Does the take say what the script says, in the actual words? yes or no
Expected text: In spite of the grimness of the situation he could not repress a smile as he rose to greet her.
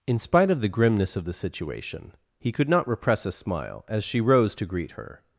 no